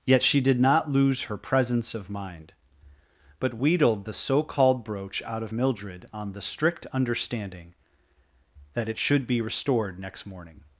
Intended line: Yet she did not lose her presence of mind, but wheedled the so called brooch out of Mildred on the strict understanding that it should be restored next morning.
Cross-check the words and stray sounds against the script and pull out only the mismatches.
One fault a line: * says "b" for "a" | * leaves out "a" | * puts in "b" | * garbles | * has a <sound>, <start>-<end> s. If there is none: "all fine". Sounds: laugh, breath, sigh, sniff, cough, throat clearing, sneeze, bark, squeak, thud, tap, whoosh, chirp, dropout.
all fine